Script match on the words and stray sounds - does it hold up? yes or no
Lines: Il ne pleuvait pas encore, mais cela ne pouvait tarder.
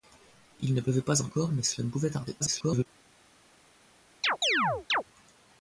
no